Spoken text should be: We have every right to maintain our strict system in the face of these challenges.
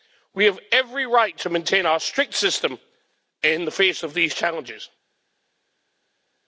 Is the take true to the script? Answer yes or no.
yes